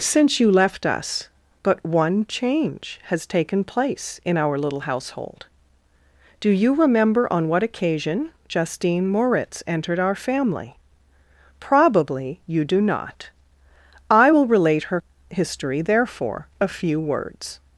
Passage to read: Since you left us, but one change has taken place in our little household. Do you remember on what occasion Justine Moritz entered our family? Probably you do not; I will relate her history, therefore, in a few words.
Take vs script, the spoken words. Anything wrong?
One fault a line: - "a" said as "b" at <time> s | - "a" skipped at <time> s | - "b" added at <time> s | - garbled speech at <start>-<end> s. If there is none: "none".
- "in" skipped at 16.5 s